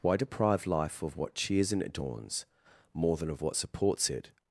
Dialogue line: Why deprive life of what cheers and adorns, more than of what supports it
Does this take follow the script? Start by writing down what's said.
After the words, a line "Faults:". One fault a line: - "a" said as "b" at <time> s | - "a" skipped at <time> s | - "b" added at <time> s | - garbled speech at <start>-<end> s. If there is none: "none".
Why deprive life of what cheers and adorns, more than of what supports it
Faults:
none